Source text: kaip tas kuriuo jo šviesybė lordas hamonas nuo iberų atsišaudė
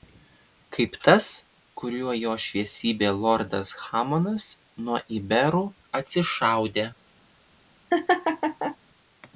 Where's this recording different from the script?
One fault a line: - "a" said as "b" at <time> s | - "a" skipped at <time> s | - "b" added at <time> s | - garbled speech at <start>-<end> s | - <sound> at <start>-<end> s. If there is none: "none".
- laugh at 7.9-8.8 s